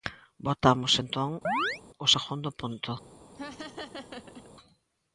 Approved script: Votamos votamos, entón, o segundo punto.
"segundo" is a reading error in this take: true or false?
false